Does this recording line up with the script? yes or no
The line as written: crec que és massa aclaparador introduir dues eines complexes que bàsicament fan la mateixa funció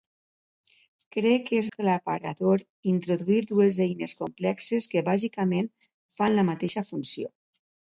no